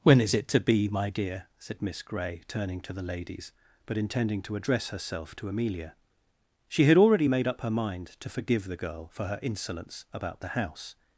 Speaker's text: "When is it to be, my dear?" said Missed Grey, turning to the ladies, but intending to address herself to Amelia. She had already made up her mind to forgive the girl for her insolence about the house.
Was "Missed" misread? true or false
true